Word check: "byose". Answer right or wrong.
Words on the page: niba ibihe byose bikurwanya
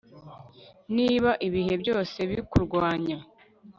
right